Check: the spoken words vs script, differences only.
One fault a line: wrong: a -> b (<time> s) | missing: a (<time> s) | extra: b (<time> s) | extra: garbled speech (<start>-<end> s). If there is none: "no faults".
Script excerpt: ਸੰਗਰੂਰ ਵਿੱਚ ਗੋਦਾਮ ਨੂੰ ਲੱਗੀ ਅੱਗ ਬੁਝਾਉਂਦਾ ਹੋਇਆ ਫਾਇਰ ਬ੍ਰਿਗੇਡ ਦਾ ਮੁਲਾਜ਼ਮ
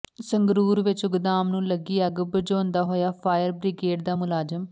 no faults